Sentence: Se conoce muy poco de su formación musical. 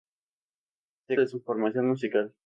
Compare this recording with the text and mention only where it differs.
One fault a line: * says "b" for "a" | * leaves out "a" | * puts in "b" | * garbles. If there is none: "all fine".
* leaves out "conoce muy poco"